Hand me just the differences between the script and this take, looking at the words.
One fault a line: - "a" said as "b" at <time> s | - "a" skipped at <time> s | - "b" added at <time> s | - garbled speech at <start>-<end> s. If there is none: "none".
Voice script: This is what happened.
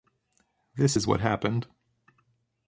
none